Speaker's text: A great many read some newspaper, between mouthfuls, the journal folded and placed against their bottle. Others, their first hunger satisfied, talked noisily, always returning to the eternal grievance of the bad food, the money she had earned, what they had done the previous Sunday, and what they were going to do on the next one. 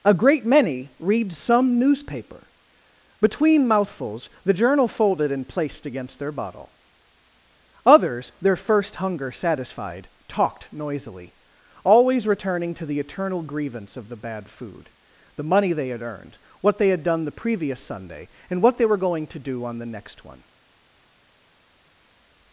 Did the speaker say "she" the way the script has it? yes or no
no